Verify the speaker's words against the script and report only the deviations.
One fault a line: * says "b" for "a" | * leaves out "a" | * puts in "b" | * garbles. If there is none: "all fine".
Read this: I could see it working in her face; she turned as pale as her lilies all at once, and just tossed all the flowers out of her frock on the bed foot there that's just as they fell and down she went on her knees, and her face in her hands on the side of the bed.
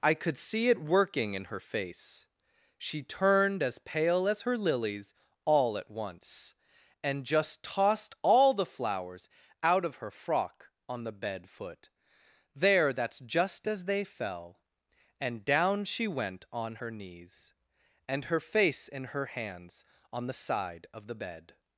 all fine